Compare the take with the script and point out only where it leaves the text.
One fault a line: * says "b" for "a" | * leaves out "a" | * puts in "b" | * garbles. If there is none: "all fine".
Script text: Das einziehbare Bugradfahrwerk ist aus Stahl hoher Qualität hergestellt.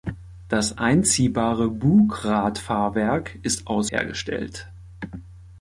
* leaves out "Stahl hoher Qualität"